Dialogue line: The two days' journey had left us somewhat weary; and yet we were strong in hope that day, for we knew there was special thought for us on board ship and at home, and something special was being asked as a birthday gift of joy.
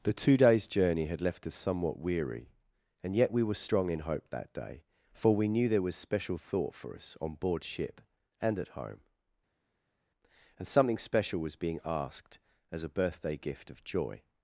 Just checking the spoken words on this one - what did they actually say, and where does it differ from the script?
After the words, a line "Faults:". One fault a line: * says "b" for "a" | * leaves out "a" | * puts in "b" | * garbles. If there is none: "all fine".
The two days' journey had left us somewhat weary; and yet we were strong in hope that day, for we knew there was special thought for us on board ship and at home, and something special was being asked as a birthday gift of joy.
Faults:
all fine